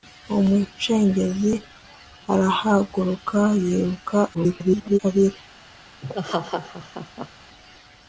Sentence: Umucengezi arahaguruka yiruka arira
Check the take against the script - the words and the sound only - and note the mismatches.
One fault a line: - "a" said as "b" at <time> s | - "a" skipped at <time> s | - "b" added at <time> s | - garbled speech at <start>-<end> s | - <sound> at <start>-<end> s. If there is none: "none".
- garbled speech at 4.3-5.0 s
- laugh at 6.0-7.3 s